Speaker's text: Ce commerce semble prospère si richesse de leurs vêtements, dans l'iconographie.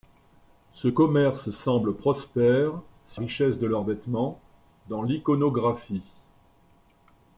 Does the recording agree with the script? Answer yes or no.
yes